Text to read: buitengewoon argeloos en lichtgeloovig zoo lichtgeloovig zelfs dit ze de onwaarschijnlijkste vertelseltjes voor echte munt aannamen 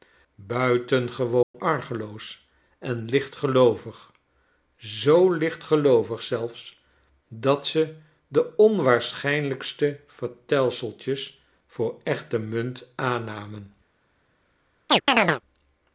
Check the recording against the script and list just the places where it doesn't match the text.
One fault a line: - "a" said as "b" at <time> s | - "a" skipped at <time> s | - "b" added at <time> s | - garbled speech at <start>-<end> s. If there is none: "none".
- "dit" said as "dat" at 7.3 s